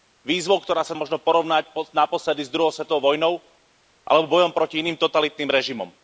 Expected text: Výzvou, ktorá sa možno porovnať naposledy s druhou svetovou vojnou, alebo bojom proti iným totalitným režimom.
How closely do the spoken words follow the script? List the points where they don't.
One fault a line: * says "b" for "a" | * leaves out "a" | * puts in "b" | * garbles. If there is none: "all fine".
all fine